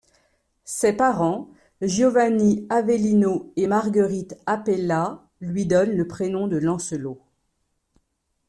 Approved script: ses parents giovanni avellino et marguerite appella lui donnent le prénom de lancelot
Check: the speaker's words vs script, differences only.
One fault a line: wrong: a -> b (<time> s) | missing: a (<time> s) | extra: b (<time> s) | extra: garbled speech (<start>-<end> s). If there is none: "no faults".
no faults